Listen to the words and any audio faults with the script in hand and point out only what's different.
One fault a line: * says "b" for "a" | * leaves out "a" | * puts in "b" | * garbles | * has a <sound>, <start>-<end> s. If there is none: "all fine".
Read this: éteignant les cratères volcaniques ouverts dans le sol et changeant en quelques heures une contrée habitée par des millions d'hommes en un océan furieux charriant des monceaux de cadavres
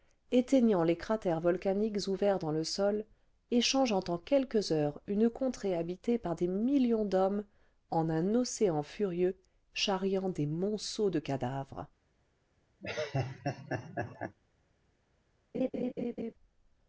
* has a laugh, 12.8-14.4 s
* has a laugh, 15.5-16.3 s